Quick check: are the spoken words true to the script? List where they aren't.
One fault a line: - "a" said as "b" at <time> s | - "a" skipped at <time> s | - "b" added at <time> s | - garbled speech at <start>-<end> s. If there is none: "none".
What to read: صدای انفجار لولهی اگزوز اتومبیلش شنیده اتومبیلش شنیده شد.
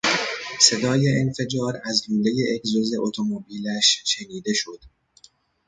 - "از" added at 1.9 s
- "اتومبیلش شنیده" skipped at 4.5 s